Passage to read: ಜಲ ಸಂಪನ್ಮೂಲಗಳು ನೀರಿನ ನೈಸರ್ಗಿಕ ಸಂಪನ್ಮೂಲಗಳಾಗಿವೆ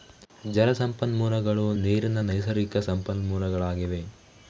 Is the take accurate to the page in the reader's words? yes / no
yes